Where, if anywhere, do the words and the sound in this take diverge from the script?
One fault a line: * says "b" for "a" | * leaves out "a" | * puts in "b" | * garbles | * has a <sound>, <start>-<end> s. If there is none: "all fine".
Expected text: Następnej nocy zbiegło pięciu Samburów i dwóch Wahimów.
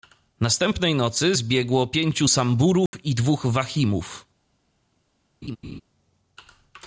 * has a dropout, 2.9-2.9 s
* has a laugh, 5.4-5.8 s